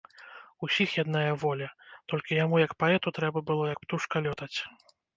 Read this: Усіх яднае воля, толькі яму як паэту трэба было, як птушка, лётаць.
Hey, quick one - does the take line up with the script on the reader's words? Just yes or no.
yes